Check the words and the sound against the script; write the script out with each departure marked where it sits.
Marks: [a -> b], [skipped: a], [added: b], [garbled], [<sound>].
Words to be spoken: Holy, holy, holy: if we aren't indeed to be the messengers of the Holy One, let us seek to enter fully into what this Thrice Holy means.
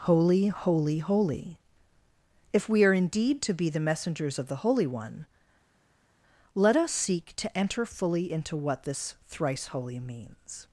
Holy, holy, holy: if we [aren't -> are] indeed to be the messengers of the Holy One, let us seek to enter fully into what this Thrice Holy means.